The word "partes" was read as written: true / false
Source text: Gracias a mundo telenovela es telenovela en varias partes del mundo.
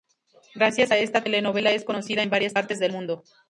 true